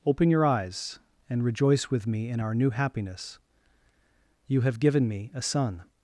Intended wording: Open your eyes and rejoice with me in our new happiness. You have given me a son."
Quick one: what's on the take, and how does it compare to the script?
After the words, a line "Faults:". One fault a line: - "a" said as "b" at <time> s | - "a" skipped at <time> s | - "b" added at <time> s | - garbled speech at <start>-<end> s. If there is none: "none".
Open your eyes and rejoice with me in our new happiness. You have given me a son."
Faults:
none